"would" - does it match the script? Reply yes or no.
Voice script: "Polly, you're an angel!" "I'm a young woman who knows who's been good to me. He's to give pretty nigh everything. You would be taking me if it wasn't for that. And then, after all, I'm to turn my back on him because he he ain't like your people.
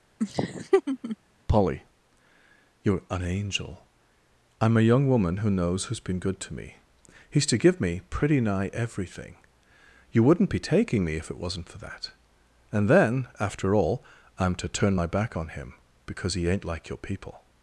no